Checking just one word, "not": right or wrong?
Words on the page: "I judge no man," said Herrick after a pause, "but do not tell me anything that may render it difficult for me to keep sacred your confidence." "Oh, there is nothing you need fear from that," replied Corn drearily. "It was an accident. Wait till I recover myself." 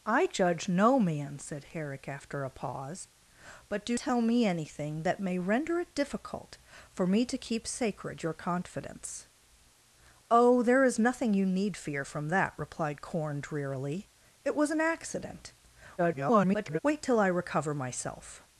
wrong